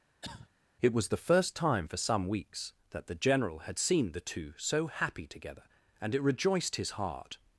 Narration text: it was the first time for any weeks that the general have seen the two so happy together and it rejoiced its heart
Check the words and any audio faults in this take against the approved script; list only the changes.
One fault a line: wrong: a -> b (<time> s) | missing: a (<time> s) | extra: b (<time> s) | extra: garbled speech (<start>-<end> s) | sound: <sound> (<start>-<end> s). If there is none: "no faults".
sound: cough (0.2-0.5 s)
wrong: any -> some (2.0 s)
wrong: have -> had (3.6 s)
wrong: its -> his (6.8 s)